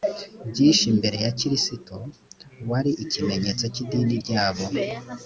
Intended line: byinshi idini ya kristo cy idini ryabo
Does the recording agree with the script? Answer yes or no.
no